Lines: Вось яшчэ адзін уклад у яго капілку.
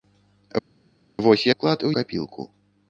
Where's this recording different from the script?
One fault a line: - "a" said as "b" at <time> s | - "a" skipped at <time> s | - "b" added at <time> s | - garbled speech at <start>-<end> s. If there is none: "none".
- "яшчэ адзін" skipped at 1.4 s
- "яго" skipped at 1.9 s